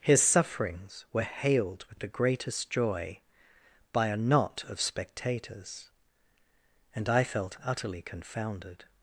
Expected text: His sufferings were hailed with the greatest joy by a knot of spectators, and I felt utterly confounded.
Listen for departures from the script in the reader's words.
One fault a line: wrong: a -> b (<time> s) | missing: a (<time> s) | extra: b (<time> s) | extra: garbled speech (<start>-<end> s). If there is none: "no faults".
no faults